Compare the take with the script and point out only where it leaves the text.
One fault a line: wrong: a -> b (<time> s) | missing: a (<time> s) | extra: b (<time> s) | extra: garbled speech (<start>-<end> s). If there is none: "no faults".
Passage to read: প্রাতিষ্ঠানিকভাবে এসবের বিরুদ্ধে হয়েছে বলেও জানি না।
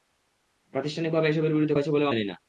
no faults